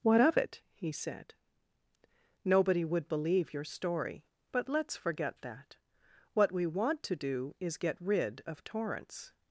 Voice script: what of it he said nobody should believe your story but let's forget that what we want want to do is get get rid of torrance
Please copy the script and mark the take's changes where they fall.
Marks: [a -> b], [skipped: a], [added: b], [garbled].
what of it he said nobody [should -> would] believe your story but let's forget that what we want [skipped: want] to do is get [skipped: get] rid of torrance